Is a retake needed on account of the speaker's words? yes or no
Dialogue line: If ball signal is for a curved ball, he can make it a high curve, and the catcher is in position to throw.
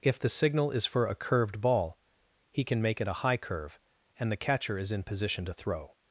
yes